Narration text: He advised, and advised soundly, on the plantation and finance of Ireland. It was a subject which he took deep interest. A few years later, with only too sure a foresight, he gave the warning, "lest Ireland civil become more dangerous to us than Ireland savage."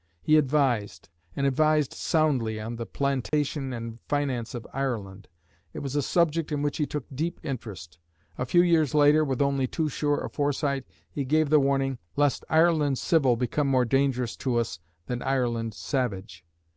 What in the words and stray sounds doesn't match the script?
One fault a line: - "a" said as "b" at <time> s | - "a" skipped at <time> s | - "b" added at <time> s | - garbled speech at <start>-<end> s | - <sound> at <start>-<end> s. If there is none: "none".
- dropout at 3.3-3.3 s
- "in" added at 6.5 s